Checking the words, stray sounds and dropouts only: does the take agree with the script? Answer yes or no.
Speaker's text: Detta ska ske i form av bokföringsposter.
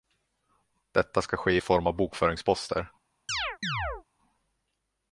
no